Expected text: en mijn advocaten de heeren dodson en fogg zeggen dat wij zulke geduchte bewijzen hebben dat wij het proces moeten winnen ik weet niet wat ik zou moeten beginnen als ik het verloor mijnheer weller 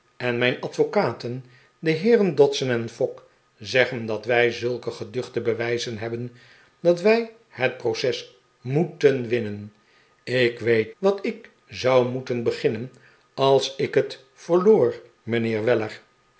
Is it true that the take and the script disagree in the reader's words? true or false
true